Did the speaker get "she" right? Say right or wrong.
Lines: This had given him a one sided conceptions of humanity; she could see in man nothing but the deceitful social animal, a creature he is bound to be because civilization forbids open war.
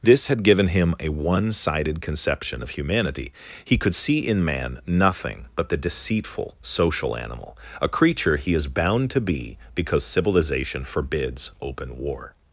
wrong